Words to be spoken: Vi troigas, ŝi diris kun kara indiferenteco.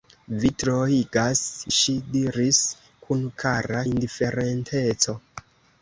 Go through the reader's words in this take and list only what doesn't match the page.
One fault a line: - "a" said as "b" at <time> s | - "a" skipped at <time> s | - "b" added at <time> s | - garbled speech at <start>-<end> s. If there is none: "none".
none